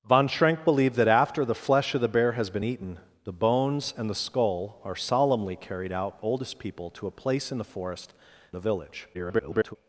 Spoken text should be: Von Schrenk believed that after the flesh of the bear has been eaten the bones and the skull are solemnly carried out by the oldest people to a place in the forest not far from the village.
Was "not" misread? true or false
true